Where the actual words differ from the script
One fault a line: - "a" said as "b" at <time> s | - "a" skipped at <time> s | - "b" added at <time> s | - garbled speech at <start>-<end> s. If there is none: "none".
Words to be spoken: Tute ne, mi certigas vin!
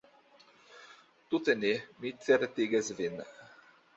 none